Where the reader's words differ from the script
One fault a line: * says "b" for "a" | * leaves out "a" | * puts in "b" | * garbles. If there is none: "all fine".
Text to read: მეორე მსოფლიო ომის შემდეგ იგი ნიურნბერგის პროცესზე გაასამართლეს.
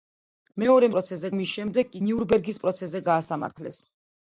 * says "პროცესზე" for "მსოფლიო"
* leaves out "იგი"